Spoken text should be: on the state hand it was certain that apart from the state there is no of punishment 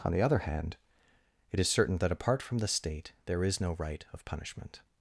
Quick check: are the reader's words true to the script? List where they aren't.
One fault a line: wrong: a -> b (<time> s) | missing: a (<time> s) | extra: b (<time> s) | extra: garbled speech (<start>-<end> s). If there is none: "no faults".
wrong: state -> other (0.2 s)
wrong: was -> is (1.6 s)
extra: right (3.7 s)